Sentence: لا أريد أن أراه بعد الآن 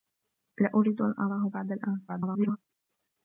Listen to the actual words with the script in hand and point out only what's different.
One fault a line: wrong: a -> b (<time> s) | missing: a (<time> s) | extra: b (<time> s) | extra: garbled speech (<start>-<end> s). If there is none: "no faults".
extra: garbled speech (2.1-2.6 s)